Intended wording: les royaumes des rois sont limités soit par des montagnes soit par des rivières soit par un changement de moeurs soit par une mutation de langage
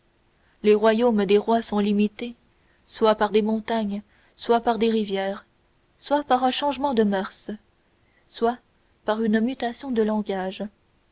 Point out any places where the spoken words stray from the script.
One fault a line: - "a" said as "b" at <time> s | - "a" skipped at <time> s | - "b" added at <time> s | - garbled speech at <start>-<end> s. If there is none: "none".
none